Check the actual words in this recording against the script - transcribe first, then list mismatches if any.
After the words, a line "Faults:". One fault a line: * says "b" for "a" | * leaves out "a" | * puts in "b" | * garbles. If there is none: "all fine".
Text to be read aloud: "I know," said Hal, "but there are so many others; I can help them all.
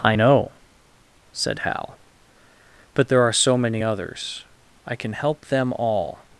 "I know," said Hal, "but there are so many others; I can help them all.
Faults:
all fine